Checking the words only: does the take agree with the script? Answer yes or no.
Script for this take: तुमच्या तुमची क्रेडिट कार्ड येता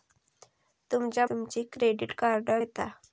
yes